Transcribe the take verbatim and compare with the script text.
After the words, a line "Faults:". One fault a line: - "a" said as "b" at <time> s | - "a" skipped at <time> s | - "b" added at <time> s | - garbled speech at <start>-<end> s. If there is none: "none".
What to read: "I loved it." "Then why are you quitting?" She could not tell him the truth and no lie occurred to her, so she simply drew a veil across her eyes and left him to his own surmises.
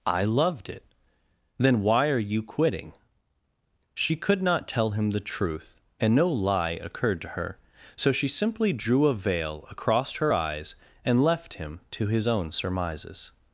"I loved it." "Then why are you quitting?" She could not tell him the truth and no lie occurred to her, so she simply drew a veil across her eyes and left him to his own surmises.
Faults:
none